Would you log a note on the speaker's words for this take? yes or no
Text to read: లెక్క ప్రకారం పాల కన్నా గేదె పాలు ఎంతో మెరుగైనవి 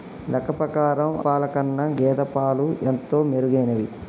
no